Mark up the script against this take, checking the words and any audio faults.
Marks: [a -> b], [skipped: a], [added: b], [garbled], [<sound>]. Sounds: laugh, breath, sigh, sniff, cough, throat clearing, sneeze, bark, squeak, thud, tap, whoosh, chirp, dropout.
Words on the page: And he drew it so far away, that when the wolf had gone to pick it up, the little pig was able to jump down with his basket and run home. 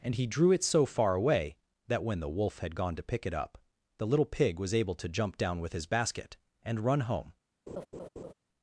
And he drew it so far away, that when the wolf had gone to pick it up, the little pig was able to jump down with his basket and run home. [laugh]